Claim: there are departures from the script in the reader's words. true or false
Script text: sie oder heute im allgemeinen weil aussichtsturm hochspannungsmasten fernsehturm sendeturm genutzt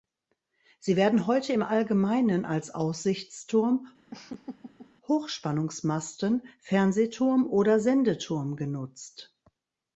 true